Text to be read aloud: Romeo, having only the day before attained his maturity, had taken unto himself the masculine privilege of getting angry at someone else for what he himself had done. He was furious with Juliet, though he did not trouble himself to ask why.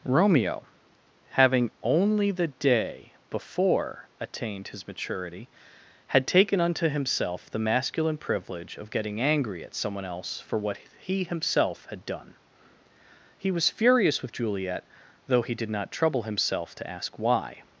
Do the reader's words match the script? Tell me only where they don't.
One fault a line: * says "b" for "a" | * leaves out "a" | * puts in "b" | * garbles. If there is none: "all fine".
all fine